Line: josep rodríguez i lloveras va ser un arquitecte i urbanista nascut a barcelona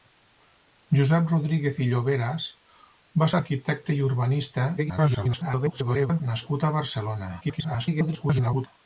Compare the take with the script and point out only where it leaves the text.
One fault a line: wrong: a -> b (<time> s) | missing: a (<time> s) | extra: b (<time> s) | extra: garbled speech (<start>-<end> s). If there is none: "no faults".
missing: ser (3.3 s)
extra: garbled speech (4.8-6.2 s)
extra: garbled speech (7.4-8.7 s)